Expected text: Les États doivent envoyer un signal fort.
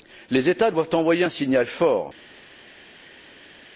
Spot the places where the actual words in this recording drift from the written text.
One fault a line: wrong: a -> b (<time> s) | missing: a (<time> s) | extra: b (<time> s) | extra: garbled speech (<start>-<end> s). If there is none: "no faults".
no faults